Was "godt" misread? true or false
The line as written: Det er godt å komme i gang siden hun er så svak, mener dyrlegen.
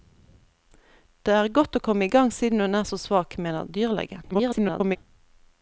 false